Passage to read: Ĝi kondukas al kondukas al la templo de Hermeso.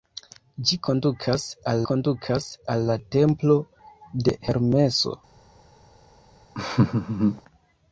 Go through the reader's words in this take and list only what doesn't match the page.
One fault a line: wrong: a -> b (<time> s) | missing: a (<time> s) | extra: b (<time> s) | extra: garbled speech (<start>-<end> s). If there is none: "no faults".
no faults